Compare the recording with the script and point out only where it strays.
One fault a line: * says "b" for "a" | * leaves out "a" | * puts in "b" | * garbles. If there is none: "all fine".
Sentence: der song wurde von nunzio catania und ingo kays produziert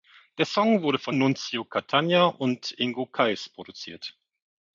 all fine